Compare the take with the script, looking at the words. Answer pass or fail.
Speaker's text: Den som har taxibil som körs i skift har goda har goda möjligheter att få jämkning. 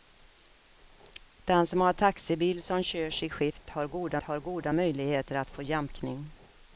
pass